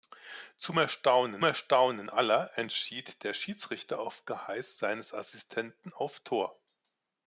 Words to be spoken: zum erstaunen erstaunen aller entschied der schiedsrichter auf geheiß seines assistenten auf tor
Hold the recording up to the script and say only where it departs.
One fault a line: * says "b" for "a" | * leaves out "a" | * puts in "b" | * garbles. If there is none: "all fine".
all fine